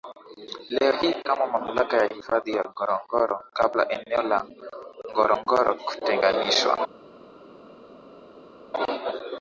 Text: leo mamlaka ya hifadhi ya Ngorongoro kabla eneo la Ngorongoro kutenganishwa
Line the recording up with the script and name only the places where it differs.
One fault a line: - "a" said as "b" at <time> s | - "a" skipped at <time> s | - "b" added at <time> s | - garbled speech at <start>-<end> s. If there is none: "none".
- "hii kama" added at 0.9 s